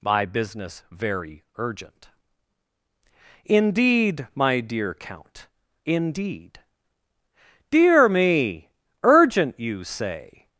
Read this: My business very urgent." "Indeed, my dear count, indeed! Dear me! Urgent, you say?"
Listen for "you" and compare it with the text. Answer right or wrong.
right